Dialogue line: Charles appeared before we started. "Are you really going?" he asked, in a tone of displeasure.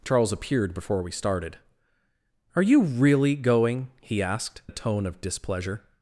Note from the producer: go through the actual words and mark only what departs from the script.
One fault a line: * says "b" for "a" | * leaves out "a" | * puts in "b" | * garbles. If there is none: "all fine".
* leaves out "in"